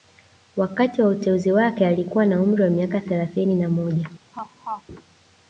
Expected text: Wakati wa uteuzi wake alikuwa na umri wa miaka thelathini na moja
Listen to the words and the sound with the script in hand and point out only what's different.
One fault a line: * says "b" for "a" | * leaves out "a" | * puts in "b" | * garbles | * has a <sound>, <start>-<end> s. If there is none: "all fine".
* has a laugh, 4.3-4.8 s